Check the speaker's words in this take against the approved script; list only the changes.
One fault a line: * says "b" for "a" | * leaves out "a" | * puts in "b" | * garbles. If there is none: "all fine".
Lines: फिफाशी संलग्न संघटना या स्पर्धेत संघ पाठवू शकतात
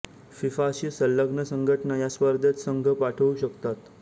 all fine